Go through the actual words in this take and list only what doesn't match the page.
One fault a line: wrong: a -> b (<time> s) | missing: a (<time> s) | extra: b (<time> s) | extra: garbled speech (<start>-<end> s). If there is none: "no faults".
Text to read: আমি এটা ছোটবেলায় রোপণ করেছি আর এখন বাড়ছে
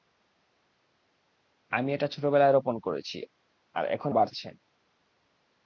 no faults